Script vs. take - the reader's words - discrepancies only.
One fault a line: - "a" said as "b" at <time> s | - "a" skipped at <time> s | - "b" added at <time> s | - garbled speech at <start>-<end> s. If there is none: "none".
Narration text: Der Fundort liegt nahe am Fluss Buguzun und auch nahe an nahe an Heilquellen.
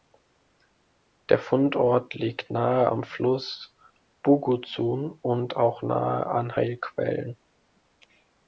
- "nahe an" skipped at 6.5 s